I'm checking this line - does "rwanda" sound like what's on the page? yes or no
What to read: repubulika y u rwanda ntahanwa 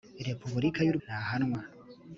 no